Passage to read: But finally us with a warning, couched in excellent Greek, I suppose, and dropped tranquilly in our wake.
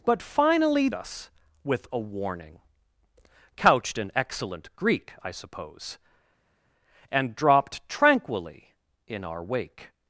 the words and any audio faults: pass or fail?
pass